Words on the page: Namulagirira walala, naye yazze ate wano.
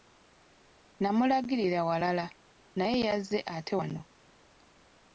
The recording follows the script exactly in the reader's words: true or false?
true